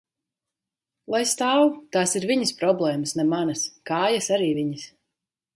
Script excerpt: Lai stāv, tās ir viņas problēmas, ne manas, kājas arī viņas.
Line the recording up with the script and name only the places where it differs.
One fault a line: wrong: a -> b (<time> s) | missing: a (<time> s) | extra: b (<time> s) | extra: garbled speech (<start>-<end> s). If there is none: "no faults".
no faults